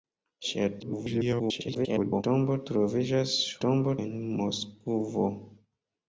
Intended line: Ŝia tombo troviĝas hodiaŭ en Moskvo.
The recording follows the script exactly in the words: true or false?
false